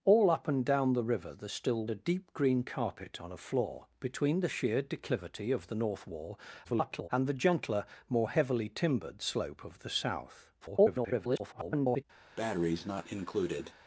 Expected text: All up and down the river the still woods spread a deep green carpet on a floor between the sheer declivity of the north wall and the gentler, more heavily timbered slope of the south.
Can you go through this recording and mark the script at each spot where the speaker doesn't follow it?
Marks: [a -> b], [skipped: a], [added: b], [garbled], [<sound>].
All up and down the river the still [skipped: woods spread] a deep green carpet on a floor between the sheer declivity of the north wall [garbled] and the gentler, more heavily timbered slope of the south. [garbled] [breath]